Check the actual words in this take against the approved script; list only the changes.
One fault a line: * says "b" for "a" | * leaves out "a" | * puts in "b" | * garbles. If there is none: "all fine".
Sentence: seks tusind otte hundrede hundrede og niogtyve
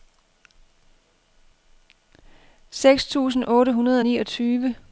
* leaves out "hundrede"